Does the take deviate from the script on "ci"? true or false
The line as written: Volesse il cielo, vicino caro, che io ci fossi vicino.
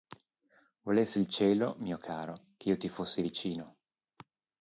true